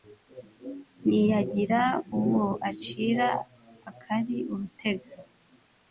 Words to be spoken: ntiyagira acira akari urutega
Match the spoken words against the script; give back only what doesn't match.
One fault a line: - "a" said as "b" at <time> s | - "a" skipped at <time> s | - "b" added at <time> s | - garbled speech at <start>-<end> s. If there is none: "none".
- "uwo" added at 2.2 s